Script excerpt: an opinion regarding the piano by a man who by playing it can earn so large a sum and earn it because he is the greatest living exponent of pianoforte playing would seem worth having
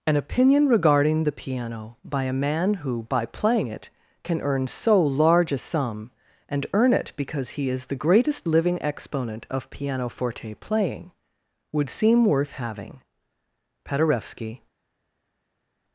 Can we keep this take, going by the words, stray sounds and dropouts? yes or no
no